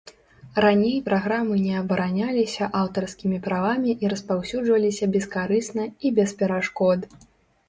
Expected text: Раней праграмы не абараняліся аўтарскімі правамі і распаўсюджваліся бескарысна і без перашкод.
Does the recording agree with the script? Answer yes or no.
yes